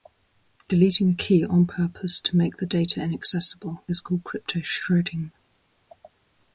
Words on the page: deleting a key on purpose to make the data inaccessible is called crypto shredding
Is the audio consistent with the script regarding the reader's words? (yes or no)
yes